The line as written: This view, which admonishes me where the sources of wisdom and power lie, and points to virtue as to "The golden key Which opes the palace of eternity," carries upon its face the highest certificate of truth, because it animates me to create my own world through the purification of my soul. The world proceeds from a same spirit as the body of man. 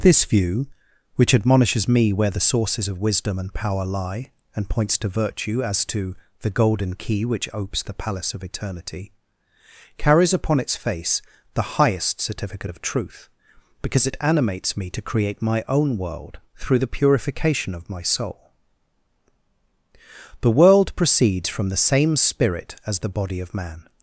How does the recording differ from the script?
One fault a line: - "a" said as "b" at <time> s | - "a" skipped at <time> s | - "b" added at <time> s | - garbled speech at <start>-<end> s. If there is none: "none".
- "a" said as "the" at 21.7 s